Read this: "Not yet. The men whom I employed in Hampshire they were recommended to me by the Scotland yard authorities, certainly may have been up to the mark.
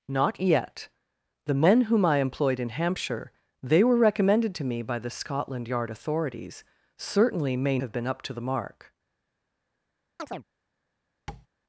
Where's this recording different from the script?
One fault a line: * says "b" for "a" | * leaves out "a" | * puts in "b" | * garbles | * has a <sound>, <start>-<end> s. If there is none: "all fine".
* has a chirp, 10.2-10.4 s
* has a tap, 11.3-11.5 s